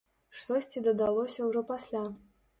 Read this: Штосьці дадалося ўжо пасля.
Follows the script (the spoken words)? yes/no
yes